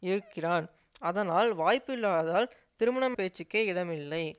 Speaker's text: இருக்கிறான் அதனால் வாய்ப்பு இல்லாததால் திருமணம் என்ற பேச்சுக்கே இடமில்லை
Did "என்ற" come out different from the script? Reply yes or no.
yes